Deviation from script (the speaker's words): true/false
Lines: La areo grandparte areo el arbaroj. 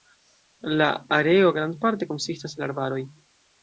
true